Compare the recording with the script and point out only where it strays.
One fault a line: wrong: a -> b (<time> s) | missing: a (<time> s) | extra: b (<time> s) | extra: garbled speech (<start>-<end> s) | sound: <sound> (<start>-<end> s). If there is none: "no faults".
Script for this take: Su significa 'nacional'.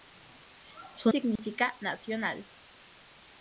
sound: dropout (1.4-1.4 s)